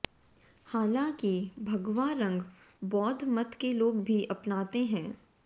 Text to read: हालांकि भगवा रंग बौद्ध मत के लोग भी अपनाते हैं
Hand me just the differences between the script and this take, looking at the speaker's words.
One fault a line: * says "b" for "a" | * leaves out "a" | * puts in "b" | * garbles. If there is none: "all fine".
all fine